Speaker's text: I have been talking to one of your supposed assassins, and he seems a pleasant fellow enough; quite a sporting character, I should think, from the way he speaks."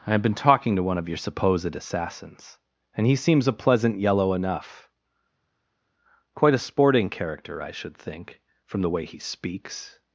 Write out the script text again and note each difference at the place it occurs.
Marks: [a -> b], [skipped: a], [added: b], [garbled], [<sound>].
I have been talking to one of your supposed assassins, and he seems a pleasant [fellow -> yellow] enough; quite a sporting character, I should think, from the way he speaks."